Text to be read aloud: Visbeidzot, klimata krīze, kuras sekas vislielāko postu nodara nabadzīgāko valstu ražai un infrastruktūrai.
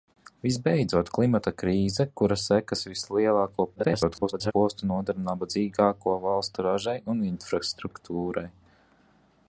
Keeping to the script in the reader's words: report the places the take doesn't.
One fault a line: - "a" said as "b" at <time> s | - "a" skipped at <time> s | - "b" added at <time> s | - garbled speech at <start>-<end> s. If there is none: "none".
- garbled speech at 3.8-4.5 s